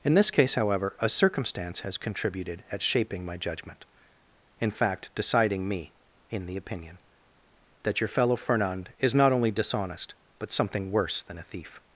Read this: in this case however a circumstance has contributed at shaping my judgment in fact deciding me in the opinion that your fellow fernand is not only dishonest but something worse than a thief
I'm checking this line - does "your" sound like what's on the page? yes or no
yes